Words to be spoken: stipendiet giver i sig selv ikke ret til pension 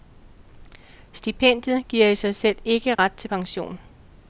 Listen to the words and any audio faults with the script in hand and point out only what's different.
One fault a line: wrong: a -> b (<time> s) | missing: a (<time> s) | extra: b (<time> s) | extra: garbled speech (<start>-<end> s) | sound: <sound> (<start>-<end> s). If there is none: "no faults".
sound: dropout (2.9-3.0 s)